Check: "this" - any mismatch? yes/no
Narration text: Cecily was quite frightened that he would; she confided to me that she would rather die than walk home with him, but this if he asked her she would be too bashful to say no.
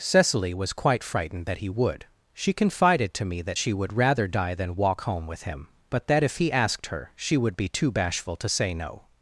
yes